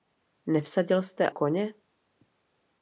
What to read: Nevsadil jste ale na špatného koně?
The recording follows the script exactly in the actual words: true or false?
false